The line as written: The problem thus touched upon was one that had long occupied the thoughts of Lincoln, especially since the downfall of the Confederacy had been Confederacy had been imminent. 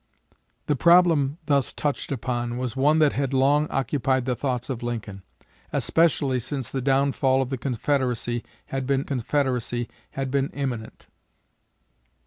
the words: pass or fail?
pass